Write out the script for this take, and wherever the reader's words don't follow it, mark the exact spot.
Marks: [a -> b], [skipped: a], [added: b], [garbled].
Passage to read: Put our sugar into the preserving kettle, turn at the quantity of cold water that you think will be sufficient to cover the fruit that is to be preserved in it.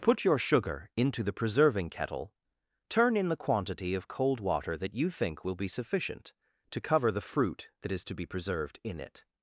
Put [our -> your] sugar into the preserving kettle, turn [at -> in] the quantity of cold water that you think will be sufficient to cover the fruit that is to be preserved in it.